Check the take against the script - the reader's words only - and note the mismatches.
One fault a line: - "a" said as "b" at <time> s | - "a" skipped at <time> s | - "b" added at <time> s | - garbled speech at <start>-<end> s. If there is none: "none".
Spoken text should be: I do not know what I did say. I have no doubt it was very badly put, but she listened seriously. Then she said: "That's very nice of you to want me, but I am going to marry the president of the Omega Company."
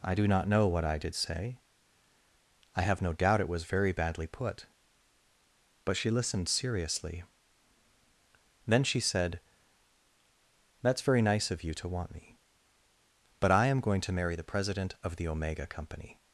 none